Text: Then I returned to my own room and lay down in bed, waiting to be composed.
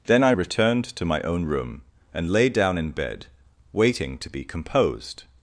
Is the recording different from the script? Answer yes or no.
no